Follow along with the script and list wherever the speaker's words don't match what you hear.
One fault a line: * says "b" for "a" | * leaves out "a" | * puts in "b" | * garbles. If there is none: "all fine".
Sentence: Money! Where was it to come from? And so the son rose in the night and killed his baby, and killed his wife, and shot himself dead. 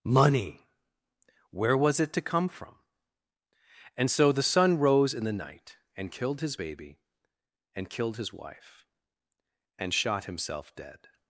all fine